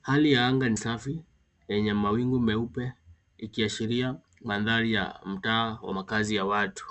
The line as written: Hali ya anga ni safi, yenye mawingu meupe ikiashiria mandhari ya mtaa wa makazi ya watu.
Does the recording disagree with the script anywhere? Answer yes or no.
no